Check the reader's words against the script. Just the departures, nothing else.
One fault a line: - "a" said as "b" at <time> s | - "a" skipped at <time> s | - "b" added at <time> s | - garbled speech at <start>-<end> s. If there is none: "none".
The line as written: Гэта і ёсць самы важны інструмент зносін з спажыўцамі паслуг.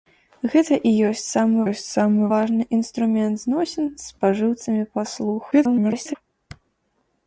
- "ёсць самы" added at 1.7 s
- garbled speech at 5.5-6.1 s